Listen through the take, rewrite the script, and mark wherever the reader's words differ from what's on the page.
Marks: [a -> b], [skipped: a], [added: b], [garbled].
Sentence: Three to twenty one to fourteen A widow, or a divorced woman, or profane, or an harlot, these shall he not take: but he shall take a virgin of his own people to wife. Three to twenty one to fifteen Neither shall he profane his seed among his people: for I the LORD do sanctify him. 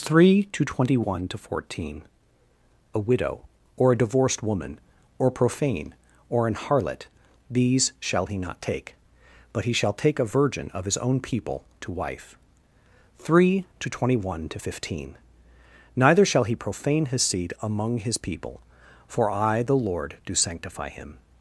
Three to twenty one to fourteen A widow, or a divorced woman, or profane, or an harlot, these shall he not take: but he shall take a virgin of his own people to wife. Three to twenty one to fifteen Neither shall he profane his seed among his people: for I the LORD do sanctify him.